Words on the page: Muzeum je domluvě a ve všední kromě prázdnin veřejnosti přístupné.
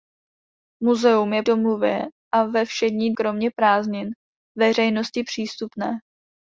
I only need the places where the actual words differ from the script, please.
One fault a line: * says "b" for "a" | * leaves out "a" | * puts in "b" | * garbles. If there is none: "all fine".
all fine